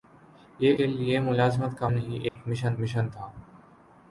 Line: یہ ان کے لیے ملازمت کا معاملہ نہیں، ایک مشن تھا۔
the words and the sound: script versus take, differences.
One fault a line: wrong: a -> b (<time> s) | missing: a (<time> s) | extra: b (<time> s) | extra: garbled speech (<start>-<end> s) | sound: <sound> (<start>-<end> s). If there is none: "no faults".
missing: ان (0.8 s)
missing: معاملہ (1.9 s)
sound: dropout (2.3-2.4 s)
extra: مشن (2.8 s)